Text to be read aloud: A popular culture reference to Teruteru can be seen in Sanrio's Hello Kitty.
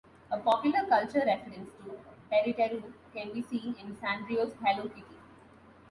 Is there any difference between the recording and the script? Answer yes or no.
no